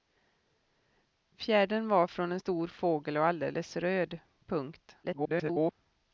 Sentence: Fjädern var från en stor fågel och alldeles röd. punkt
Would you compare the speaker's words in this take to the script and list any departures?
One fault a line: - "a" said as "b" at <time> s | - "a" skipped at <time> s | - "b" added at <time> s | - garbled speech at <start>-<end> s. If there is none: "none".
- garbled speech at 5.0-5.7 s